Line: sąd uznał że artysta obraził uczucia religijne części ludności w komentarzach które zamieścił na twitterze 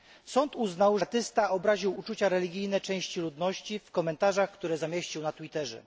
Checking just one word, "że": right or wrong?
wrong